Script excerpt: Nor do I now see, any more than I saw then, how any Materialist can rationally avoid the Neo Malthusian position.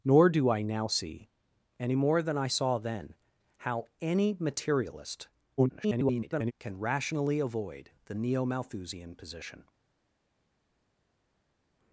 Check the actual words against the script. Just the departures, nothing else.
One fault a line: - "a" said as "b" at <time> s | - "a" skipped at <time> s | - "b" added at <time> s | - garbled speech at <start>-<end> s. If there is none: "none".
- garbled speech at 5.6-6.5 s